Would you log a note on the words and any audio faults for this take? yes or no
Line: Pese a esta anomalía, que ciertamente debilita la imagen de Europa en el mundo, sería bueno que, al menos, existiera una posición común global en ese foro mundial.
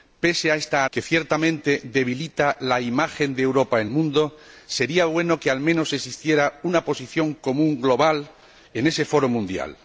yes